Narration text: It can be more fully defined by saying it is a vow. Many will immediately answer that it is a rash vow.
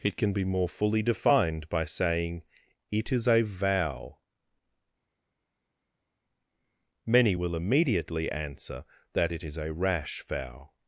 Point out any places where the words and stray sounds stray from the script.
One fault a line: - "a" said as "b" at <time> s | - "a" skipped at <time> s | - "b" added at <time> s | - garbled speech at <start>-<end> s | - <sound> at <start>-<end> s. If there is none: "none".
none